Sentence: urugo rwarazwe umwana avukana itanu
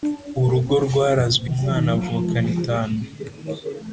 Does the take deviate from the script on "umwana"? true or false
false